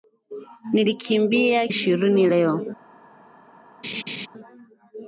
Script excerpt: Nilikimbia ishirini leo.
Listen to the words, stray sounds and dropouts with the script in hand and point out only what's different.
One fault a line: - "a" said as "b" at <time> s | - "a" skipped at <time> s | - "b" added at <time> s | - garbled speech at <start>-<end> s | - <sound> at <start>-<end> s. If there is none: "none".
- laugh at 3.8-4.3 s